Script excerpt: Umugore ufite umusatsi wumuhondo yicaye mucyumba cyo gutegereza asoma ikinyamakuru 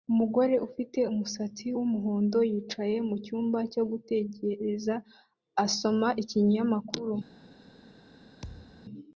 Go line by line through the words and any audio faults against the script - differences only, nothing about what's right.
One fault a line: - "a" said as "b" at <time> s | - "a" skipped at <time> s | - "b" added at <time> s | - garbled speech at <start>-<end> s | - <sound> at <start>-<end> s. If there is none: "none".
- thud at 8.4-8.8 s